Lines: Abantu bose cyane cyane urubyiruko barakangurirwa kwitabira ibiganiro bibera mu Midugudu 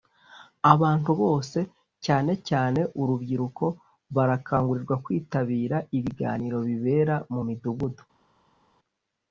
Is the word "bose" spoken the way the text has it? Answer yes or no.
yes